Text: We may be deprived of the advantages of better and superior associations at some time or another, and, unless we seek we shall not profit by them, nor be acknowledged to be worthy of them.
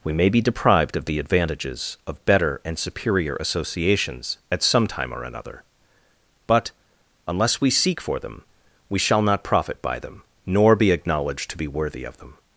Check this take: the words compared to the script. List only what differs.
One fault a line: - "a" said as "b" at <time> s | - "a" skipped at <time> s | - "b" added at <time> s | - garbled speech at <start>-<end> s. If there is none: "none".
- "and" said as "but" at 6.5 s
- "for them" added at 8.0 s